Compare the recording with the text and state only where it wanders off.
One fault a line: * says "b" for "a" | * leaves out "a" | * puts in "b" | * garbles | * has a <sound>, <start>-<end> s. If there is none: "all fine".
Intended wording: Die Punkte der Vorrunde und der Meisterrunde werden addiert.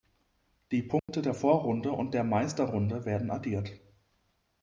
* has a dropout, 1.0-1.1 s